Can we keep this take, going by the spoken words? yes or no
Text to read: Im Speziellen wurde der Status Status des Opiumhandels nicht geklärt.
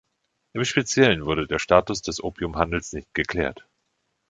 no